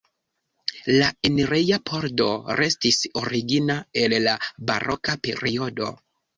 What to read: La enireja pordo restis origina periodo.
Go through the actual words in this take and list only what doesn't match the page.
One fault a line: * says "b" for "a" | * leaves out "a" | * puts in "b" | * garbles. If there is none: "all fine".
* puts in "el la baroka"